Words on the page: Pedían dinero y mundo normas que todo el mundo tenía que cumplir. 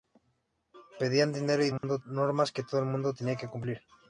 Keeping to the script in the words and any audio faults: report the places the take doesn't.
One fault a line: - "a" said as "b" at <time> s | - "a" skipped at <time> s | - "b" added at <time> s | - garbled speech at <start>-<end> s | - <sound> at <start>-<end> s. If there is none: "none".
- dropout at 1.8-1.8 s